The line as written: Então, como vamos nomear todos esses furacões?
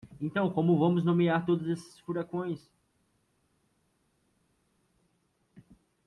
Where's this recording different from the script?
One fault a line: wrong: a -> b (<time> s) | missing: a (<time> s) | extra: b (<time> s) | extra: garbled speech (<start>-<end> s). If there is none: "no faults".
no faults